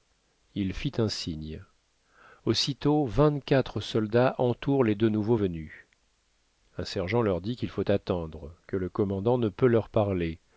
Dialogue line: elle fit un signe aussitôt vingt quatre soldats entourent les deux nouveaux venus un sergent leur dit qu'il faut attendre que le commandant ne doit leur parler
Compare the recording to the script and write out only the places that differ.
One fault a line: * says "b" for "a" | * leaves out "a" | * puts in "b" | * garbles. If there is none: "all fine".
* says "il" for "elle"
* says "peut" for "doit"